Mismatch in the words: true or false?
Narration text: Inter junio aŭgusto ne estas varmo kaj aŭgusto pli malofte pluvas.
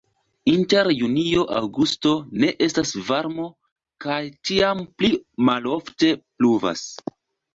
true